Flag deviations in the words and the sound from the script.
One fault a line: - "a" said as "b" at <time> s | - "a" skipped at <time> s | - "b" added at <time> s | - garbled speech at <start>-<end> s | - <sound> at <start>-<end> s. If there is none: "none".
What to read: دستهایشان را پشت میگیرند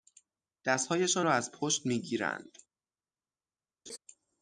- "از" added at 1.3 s
- laugh at 3.9-4.0 s